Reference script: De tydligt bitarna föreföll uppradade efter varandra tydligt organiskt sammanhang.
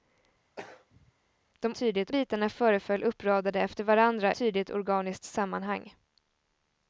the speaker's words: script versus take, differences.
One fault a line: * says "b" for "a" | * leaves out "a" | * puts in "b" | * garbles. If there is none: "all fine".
all fine